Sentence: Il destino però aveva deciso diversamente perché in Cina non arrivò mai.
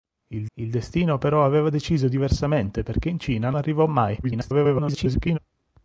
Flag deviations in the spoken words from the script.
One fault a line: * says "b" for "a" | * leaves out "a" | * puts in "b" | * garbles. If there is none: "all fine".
* puts in "il"
* leaves out "non"
* garbles